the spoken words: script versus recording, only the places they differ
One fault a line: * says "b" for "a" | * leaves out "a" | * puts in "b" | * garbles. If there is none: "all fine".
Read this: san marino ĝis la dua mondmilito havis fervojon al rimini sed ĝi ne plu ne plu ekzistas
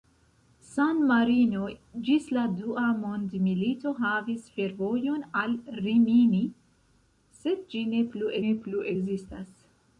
all fine